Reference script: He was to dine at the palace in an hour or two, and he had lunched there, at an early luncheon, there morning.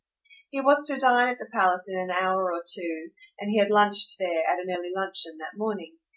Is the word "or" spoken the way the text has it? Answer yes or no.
yes